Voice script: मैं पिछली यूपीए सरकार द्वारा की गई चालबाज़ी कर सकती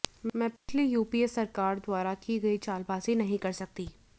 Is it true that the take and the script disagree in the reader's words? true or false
true